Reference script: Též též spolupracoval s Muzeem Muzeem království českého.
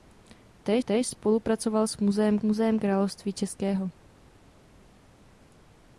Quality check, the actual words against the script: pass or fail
pass